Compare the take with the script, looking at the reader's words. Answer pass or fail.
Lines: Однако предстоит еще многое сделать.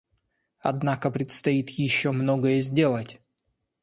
pass